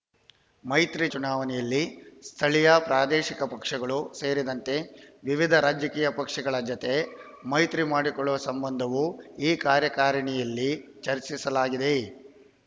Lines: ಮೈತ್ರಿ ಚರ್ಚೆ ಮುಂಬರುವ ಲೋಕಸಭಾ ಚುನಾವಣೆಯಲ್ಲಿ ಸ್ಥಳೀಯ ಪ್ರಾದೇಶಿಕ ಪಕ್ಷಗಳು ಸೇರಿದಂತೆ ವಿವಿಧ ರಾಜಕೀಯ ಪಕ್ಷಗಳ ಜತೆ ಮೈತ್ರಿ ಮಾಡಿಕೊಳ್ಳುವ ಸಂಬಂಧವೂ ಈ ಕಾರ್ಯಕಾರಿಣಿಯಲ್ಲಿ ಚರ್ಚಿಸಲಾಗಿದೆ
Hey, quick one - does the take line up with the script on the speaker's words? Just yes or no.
no